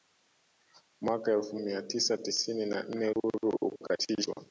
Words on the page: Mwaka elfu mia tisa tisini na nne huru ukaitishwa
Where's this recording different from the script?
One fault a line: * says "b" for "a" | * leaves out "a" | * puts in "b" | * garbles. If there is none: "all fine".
all fine